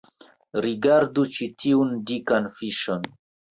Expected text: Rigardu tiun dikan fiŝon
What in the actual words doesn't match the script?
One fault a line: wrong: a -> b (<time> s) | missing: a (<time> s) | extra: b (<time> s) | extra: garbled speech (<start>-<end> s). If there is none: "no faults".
extra: ĉi (1.4 s)